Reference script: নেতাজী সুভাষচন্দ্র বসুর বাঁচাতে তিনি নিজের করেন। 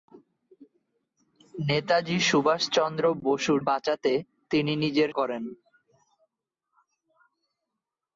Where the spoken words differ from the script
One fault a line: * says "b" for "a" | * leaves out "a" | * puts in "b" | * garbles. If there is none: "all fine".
all fine